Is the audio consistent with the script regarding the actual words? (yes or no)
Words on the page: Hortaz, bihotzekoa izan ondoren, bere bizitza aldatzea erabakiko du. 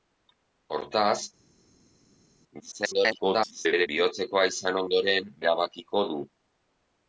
no